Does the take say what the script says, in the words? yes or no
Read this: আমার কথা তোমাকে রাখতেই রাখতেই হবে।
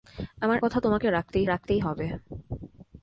yes